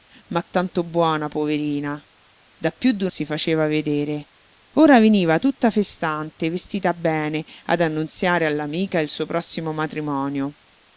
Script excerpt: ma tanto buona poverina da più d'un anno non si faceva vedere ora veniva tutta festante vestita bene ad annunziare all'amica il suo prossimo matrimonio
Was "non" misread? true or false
true